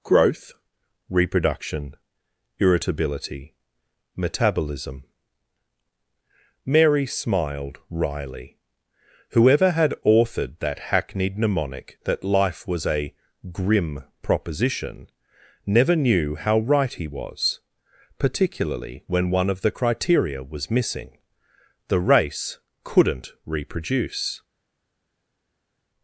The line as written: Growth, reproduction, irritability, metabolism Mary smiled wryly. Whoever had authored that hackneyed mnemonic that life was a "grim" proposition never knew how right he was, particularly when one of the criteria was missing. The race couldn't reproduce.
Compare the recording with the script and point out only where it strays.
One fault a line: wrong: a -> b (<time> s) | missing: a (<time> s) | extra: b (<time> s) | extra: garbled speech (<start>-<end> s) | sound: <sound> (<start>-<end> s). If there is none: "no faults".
no faults